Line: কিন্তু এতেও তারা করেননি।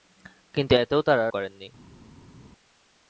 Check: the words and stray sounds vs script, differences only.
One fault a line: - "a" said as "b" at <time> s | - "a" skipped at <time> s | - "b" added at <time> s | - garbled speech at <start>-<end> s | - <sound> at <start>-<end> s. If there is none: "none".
none